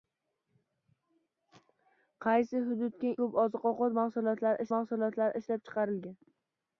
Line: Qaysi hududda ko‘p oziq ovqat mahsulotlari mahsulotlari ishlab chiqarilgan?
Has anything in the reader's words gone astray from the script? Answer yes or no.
no